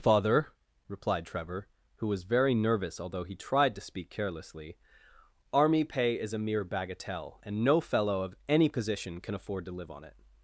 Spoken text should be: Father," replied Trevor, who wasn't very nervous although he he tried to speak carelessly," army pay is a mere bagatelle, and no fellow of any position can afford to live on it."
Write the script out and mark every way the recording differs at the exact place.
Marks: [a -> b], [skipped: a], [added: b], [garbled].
Father," replied Trevor, who [wasn't -> was] very nervous although he [skipped: he] tried to speak carelessly," army pay is a mere bagatelle, and no fellow of any position can afford to live on it."